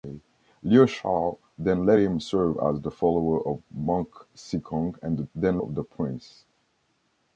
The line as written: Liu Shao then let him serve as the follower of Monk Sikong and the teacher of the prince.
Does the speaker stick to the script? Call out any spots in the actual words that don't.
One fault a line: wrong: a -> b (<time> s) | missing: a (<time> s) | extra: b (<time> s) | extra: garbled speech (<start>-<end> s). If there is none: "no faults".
wrong: teacher -> then (5.4 s)